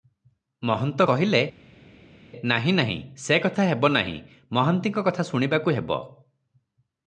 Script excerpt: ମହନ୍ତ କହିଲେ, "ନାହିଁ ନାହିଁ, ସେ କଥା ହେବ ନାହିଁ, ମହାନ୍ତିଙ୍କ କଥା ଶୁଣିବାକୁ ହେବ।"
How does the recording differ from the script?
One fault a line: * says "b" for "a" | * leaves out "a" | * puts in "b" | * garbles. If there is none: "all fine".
all fine